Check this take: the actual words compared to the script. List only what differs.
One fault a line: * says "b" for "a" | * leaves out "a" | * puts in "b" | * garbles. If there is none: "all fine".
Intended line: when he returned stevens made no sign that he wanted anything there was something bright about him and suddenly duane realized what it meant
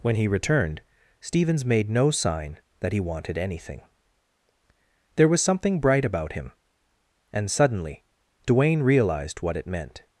all fine